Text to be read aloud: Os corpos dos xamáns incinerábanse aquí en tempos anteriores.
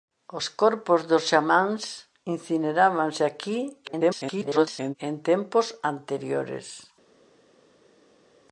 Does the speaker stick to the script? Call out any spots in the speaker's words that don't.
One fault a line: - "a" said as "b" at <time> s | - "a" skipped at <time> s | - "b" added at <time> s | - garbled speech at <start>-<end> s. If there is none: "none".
- garbled speech at 3.8-5.0 s